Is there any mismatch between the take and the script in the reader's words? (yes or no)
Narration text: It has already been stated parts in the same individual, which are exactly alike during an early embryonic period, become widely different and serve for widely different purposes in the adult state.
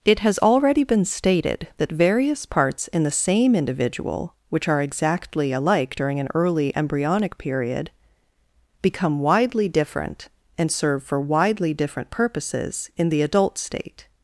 yes